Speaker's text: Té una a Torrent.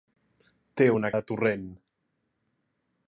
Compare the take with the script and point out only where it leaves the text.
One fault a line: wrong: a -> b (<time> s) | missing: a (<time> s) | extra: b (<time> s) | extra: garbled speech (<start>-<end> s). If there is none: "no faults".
no faults